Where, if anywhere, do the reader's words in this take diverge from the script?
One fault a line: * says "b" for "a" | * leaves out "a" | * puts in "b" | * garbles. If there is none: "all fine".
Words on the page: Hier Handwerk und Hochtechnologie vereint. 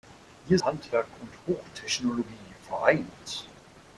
all fine